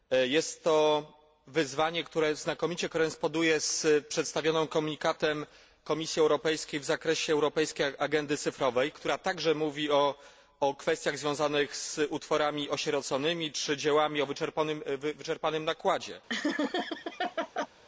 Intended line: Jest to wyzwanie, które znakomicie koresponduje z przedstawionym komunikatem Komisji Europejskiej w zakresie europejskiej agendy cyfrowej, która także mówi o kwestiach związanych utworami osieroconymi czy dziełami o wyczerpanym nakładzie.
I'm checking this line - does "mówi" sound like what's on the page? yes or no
yes